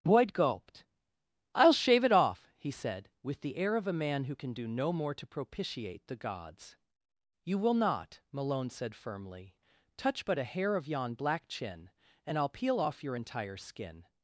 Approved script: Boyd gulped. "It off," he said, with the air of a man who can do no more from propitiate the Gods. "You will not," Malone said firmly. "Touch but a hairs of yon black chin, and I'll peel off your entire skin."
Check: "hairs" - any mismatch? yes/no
yes